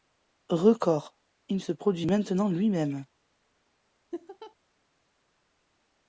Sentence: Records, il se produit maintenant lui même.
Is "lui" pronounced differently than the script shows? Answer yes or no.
no